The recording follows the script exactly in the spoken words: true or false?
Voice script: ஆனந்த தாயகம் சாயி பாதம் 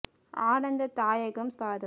false